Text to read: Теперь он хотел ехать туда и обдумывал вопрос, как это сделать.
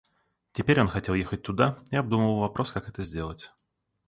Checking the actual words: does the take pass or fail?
pass